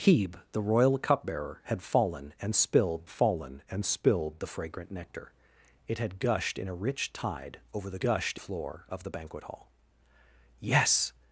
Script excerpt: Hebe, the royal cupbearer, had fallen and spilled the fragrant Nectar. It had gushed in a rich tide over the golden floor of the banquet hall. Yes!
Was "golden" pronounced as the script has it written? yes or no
no